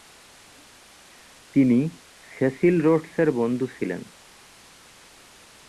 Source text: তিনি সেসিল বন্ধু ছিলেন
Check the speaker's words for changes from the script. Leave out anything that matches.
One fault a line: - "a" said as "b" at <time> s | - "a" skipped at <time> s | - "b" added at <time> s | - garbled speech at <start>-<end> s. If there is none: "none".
- "রোডসের" added at 2.8 s